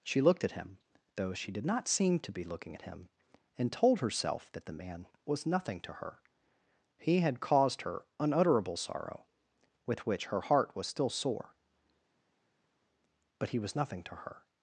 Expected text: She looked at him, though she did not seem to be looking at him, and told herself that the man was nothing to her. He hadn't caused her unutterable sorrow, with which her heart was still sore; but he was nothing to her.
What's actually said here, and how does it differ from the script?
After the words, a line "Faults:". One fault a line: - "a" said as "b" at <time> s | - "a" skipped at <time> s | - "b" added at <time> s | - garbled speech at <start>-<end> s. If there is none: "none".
She looked at him, though she did not seem to be looking at him, and told herself that the man was nothing to her. He had caused her unutterable sorrow, with which her heart was still sore; but he was nothing to her.
Faults:
- "hadn't" said as "had" at 7.2 s